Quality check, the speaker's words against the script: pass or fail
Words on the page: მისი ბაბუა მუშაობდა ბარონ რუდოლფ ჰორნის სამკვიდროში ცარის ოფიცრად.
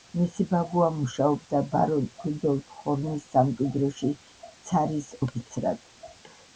pass